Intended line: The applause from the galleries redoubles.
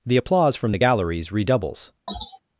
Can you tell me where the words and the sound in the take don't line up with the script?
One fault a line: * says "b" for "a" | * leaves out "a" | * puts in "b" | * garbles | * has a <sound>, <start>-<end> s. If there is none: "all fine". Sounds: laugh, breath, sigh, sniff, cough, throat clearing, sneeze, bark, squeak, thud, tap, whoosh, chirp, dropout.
* has a sneeze, 2.1-2.4 s